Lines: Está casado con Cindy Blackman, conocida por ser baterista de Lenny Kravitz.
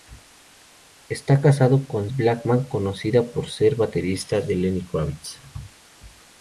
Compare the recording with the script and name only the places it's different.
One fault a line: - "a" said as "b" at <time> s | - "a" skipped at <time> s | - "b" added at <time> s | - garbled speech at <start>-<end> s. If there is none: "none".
- "Cindy" skipped at 2.1 s